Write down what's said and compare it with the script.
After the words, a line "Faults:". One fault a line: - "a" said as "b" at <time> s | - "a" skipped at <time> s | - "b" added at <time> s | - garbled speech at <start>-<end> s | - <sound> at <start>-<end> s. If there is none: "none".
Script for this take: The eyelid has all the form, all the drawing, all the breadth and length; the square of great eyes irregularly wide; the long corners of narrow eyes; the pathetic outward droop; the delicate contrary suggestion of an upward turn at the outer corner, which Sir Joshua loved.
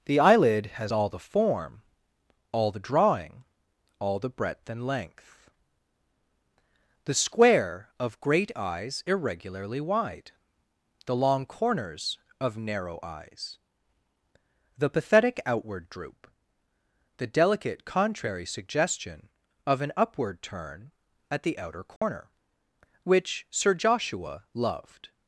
The eyelid has all the form, all the drawing, all the breadth and length; the square of great eyes irregularly wide; the long corners of narrow eyes; the pathetic outward droop; the delicate contrary suggestion of an upward turn at the outer corner, which Sir Joshua loved.
Faults:
- dropout at 22.0-22.0 s